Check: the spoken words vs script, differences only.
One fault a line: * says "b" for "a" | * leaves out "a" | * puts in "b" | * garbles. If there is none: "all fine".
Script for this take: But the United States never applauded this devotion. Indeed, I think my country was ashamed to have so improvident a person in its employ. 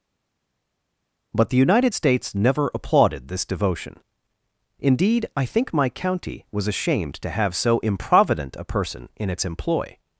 * says "county" for "country"